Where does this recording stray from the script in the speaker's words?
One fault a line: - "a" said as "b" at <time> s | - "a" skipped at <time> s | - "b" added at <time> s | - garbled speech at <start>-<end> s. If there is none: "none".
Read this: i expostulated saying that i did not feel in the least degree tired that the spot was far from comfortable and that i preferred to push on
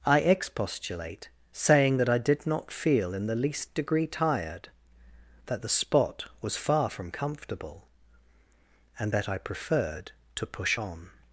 - "expostulated" said as "expostulate" at 0.2 s